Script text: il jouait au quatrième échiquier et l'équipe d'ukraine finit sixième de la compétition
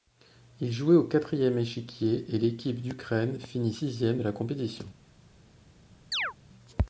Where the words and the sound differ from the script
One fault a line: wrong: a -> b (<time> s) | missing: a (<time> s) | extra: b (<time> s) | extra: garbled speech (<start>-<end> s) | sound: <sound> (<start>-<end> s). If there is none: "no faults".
sound: chirp (6.1-6.3 s)